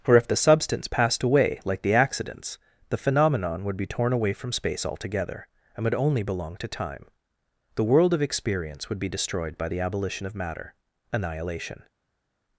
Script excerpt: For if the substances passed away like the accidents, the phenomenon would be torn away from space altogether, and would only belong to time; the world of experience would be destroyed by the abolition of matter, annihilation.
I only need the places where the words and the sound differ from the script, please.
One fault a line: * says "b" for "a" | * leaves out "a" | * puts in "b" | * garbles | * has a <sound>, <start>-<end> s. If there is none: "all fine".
* says "substance" for "substances"